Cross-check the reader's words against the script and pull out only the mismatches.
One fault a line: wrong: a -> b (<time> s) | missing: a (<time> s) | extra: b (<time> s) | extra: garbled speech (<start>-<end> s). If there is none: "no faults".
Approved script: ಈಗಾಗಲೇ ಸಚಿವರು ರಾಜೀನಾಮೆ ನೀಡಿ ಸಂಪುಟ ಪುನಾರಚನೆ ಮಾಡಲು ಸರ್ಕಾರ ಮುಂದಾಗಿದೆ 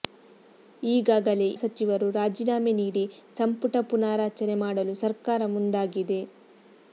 no faults